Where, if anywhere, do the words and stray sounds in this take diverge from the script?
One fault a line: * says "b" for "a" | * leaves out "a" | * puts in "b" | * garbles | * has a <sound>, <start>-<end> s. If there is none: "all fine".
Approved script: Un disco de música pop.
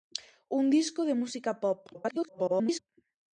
* garbles